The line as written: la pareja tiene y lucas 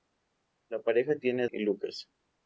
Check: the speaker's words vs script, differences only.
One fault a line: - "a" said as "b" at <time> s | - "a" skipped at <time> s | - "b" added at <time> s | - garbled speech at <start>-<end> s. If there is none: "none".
none